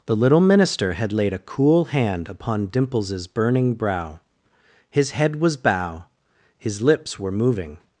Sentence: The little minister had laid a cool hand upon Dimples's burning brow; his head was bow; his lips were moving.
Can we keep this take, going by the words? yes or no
yes